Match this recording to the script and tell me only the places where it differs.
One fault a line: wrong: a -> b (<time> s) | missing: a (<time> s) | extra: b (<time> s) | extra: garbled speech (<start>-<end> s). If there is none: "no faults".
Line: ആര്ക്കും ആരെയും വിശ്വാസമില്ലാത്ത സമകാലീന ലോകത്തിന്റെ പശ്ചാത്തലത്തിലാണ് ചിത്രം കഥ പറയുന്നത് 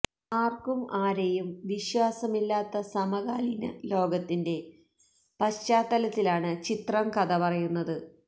no faults